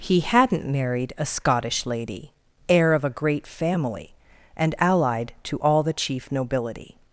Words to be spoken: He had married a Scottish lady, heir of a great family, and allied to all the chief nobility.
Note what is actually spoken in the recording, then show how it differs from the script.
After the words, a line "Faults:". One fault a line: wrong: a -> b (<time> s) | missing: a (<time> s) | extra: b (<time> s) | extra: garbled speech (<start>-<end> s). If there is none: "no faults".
He hadn't married a Scottish lady, heir of a great family, and allied to all the chief nobility.
Faults:
wrong: had -> hadn't (0.2 s)